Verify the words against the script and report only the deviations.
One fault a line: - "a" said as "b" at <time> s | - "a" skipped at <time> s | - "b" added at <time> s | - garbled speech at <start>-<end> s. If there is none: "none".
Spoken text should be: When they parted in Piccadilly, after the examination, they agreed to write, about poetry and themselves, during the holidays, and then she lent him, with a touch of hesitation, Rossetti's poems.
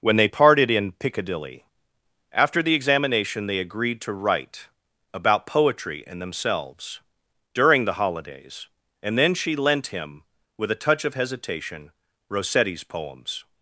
none